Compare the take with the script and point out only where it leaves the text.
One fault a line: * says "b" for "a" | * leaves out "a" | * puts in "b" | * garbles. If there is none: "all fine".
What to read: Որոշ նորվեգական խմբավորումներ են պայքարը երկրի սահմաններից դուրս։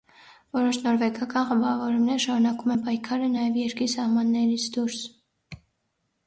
* puts in "շարունակում"
* puts in "նաև"